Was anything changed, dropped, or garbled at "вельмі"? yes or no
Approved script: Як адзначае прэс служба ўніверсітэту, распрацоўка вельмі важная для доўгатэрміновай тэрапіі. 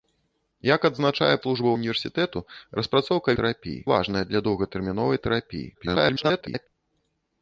yes